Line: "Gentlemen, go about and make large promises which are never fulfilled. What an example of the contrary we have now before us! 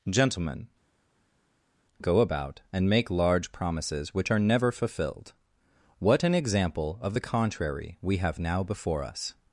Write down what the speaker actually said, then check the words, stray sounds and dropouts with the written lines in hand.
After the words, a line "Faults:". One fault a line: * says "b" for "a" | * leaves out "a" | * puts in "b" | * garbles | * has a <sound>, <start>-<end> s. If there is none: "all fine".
"Gentlemen, go about and make large promises which are never fulfilled. What an example of the contrary we have now before us!
Faults:
all fine